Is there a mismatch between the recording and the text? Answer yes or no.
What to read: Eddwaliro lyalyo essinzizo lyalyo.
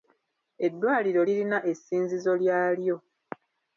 yes